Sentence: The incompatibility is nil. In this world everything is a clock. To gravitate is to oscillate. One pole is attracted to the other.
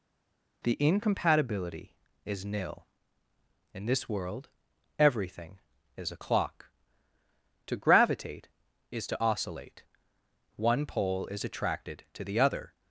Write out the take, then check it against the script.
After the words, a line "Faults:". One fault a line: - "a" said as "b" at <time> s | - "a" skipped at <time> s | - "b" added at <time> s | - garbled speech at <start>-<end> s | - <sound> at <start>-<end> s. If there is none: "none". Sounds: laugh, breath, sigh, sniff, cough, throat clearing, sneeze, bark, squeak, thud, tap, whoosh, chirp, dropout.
The incompatibility is nil. In this world everything is a clock. To gravitate is to oscillate. One pole is attracted to the other.
Faults:
none